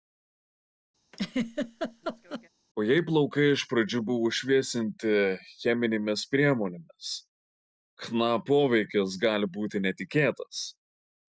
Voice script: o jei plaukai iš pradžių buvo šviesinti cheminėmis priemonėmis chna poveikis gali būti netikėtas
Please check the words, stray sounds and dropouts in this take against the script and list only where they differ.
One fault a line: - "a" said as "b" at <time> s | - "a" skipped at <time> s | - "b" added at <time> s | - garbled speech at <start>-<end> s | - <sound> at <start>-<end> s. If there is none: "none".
- laugh at 1.1-2.5 s